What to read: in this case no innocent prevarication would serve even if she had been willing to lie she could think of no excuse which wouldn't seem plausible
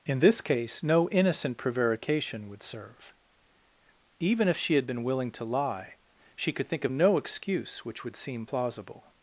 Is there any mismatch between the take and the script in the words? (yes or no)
yes